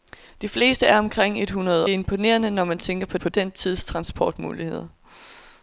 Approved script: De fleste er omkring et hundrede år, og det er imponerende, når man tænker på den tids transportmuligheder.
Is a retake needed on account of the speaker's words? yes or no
yes